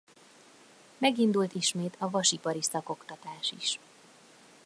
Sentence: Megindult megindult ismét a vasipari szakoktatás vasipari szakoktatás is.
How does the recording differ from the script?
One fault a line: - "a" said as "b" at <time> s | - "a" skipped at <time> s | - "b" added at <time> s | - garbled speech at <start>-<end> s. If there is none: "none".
- "megindult" skipped at 1.6 s
- "vasipari szakoktatás" skipped at 3.5 s